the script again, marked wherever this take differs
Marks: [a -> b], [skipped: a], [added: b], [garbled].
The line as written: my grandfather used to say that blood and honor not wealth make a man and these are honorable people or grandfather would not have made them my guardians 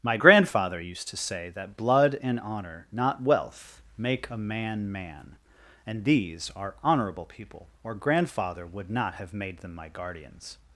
my grandfather used to say that blood and honor not wealth make a man [added: man] and these are honorable people or grandfather would not have made them my guardians